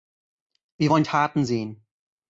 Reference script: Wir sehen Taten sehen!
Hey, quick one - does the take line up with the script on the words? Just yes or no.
no